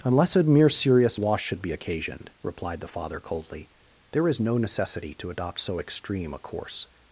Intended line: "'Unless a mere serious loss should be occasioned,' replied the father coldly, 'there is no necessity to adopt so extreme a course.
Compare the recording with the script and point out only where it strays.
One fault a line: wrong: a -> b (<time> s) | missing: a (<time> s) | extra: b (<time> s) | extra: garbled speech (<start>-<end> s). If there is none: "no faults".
no faults